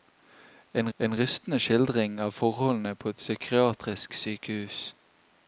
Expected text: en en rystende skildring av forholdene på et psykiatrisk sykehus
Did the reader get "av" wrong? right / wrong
right